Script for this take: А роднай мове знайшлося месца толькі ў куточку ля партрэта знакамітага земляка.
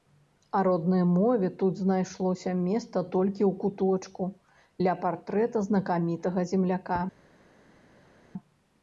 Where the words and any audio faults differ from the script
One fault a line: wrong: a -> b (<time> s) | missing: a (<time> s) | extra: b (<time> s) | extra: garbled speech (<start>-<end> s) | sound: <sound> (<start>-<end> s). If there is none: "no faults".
extra: тут (1.6 s)